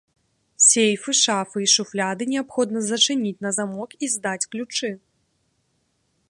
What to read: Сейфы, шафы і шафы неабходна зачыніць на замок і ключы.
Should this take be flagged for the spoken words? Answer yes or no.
yes